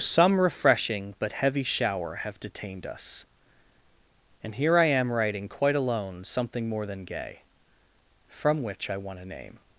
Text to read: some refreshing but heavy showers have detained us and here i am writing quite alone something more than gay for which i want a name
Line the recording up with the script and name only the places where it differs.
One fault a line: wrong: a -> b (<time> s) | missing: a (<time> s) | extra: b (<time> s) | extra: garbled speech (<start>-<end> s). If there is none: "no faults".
wrong: showers -> shower (1.6 s)
wrong: for -> from (8.3 s)